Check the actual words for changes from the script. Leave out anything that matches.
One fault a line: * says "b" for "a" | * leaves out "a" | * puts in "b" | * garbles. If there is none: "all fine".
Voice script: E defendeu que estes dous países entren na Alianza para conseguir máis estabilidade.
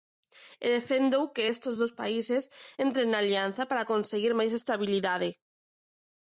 all fine